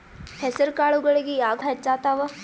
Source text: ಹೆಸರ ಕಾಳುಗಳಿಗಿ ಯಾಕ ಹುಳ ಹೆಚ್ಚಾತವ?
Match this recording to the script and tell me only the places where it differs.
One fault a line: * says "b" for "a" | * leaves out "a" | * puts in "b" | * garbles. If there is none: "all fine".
* leaves out "ಹುಳ"